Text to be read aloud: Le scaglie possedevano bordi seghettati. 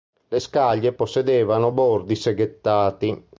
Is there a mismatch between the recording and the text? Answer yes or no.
no